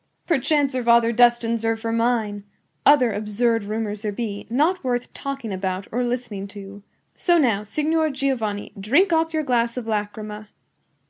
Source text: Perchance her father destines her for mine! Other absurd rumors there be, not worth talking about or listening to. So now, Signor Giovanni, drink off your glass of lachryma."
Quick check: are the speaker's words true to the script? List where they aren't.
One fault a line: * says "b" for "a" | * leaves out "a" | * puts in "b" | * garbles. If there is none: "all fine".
all fine